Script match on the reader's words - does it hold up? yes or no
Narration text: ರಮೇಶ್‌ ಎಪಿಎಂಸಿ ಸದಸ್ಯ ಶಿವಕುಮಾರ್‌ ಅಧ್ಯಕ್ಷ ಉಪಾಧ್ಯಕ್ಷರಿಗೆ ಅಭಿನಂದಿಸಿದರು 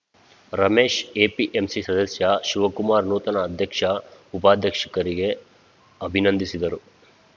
no